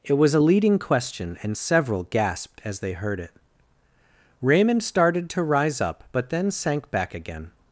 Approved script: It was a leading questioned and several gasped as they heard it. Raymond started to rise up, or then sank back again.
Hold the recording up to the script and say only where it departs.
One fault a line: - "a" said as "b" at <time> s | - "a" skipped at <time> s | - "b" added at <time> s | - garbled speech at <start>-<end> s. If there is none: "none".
- "questioned" said as "question" at 0.8 s
- "or" said as "but" at 6.1 s